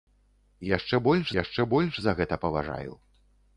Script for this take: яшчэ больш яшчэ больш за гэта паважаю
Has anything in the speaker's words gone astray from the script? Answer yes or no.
no